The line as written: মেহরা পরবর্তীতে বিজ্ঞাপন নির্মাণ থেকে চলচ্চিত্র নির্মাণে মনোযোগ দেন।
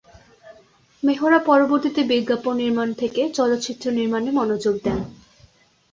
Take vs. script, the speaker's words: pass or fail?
pass